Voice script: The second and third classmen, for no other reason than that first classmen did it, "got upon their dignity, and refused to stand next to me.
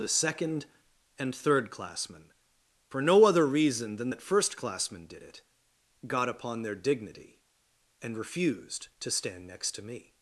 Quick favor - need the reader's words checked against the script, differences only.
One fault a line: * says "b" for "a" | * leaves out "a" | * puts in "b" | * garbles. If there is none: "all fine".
all fine